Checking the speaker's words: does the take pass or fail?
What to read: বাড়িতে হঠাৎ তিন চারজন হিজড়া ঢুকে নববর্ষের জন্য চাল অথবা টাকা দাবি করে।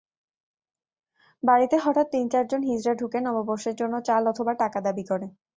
pass